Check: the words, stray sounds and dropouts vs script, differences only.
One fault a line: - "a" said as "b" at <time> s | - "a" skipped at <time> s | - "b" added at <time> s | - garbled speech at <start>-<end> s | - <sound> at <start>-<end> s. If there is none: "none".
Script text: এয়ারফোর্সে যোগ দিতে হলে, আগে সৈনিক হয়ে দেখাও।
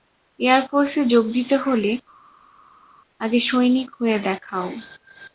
none